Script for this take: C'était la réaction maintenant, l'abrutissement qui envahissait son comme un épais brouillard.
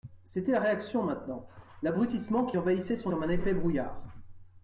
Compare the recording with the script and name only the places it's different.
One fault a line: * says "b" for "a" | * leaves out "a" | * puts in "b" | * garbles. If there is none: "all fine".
all fine